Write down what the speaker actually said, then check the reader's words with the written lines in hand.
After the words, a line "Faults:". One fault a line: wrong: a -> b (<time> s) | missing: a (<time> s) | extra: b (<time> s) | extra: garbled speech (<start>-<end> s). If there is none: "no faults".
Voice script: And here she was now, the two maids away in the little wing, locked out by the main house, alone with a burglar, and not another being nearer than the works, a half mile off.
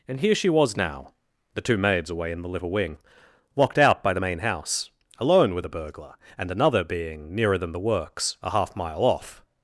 And here she was now, the two maids away in the little wing, locked out by the main house, alone with a burglar, and another being nearer than the works, a half mile off.
Faults:
missing: not (6.5 s)